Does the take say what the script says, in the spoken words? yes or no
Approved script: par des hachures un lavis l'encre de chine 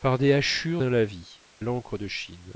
yes